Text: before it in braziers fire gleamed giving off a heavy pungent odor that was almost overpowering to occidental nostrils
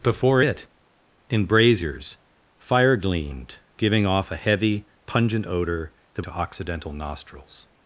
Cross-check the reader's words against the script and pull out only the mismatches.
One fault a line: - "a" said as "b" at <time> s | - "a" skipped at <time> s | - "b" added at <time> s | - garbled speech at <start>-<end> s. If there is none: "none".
- "was almost overpowering" skipped at 6.2 s